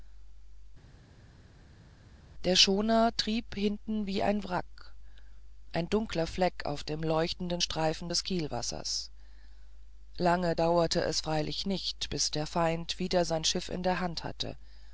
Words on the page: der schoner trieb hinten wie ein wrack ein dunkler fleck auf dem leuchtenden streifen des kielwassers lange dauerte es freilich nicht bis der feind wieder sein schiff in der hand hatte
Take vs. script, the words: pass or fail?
pass